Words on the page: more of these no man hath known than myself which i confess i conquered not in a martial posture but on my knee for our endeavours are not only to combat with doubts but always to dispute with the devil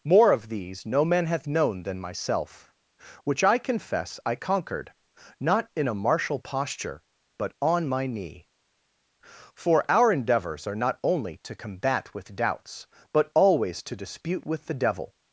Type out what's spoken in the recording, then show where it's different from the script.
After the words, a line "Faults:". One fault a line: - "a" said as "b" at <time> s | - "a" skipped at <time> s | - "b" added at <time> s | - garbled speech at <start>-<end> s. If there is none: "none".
more of these no man hath known than myself which i confess i conquered not in a martial posture but on my knee for our endeavours are not only to combat with doubts but always to dispute with the devil
Faults:
none